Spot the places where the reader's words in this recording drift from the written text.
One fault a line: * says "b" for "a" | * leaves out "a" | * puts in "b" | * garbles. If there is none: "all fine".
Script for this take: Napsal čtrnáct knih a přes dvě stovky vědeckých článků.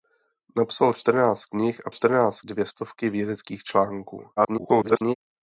* says "čtrnáct" for "přes"
* garbles